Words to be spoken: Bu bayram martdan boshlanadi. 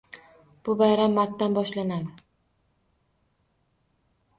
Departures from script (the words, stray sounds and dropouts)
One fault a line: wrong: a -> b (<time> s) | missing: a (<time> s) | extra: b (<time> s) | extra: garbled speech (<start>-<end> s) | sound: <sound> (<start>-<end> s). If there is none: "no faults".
no faults